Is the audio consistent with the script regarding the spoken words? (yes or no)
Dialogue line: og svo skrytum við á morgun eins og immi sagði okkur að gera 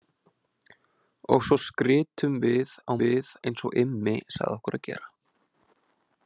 no